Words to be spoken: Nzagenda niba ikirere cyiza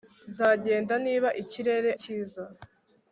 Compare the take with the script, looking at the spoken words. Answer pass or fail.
pass